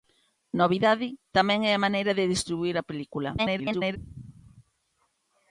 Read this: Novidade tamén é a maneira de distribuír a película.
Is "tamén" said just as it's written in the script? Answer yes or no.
yes